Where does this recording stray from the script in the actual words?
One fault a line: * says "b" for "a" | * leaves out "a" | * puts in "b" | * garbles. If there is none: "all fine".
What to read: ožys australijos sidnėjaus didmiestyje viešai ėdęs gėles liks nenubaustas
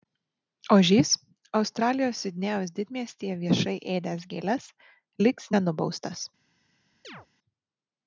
all fine